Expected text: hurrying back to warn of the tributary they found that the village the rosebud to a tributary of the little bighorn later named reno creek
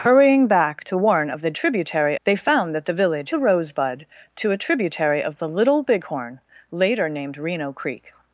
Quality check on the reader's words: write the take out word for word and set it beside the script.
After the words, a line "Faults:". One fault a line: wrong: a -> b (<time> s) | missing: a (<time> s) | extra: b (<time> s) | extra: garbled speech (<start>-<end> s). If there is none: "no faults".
hurrying back to warn of the tributary they found that the village the rosebud to a tributary of the little bighorn later named reno creek
Faults:
no faults